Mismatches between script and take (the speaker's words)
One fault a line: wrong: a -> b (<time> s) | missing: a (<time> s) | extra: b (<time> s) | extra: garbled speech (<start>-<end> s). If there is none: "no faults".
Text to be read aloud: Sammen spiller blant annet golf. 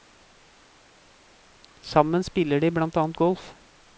extra: de (2.6 s)